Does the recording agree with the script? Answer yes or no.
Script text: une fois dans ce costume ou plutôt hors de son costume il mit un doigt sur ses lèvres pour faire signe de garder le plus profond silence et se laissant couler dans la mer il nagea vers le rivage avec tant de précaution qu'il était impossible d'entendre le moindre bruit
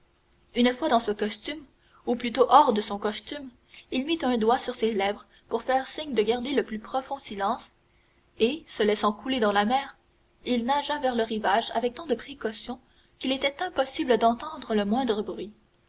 yes